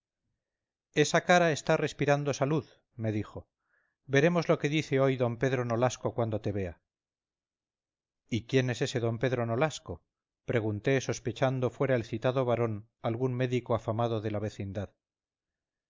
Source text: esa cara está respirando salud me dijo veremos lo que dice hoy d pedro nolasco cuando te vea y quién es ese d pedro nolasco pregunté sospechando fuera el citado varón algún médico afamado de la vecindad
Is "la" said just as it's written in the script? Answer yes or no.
yes